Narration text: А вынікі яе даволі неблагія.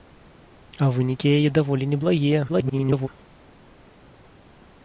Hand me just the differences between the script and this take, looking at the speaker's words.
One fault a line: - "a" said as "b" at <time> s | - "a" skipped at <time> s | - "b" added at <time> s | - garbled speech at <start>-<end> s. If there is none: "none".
- garbled speech at 2.5-3.1 s